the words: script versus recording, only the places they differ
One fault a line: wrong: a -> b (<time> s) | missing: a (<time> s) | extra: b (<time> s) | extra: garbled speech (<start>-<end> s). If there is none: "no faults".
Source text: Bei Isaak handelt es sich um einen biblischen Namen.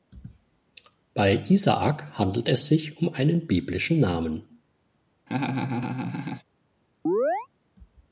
no faults